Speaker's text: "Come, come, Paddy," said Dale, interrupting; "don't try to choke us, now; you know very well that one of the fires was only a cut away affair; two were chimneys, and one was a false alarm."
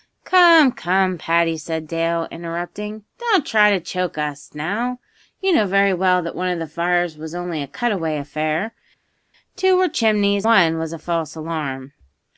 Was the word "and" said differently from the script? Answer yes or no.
yes